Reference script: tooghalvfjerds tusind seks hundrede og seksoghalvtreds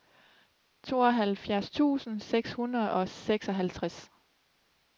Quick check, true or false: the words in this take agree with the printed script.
true